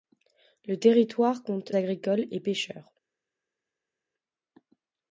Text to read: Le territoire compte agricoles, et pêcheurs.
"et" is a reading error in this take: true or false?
false